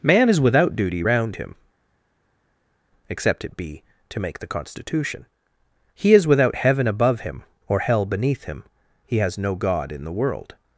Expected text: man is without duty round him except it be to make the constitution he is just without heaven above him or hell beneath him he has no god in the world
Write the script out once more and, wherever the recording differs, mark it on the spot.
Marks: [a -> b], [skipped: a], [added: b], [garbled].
man is without duty round him except it be to make the constitution he is [skipped: just] without heaven above him or hell beneath him he has no god in the world